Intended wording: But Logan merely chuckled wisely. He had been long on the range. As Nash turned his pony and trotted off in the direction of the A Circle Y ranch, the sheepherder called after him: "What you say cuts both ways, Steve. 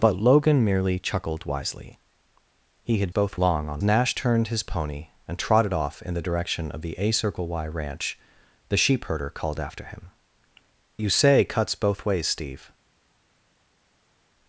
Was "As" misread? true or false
true